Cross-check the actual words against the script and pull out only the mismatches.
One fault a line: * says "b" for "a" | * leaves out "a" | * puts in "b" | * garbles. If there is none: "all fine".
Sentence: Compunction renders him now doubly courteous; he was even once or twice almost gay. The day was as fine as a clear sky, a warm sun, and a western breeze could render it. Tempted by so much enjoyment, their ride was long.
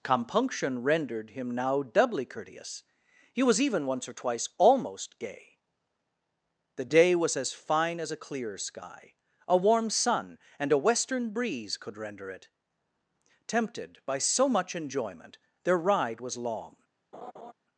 * says "rendered" for "renders"